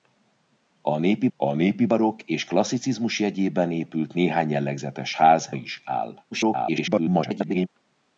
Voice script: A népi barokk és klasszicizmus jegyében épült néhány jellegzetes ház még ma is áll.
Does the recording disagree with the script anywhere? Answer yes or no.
yes